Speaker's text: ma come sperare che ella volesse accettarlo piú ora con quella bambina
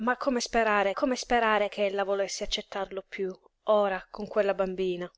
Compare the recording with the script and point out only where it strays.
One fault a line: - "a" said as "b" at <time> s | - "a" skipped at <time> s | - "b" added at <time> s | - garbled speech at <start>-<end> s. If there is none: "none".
- "come sperare" added at 0.9 s